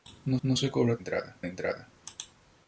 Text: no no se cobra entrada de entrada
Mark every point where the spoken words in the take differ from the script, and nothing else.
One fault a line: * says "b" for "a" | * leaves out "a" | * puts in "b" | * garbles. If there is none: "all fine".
all fine